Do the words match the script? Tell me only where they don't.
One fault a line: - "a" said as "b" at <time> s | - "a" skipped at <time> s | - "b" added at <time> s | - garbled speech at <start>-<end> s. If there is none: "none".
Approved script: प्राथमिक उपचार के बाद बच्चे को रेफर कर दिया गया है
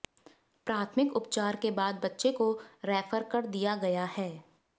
none